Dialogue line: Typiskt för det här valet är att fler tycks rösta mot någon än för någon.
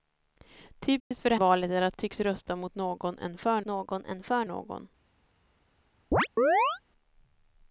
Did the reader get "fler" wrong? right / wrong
wrong